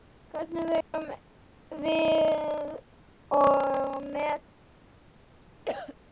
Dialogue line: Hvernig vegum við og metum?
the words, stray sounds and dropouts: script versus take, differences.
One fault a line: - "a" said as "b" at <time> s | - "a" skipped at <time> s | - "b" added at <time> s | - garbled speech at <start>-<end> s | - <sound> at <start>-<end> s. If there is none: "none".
- dropout at 0.8-0.9 s
- cough at 5.7-6.0 s